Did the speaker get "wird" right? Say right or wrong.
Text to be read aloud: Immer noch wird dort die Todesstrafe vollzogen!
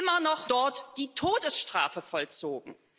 wrong